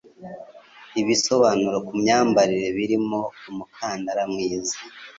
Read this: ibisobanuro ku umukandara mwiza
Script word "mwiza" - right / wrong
right